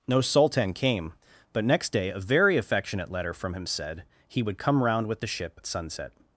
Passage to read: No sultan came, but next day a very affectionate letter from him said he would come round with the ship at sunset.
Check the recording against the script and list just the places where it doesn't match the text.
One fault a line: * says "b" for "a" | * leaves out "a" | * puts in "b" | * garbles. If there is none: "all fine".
* leaves out "at"